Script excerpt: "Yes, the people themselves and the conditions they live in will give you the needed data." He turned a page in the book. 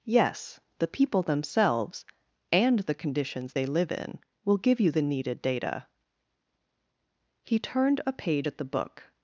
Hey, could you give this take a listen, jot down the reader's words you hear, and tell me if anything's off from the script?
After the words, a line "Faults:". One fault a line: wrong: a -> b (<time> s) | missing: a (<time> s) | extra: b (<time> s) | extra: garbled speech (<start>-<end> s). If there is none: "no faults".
"Yes, the people themselves and the conditions they live in will give you the needed data." He turned a page at the book.
Faults:
wrong: in -> at (8.4 s)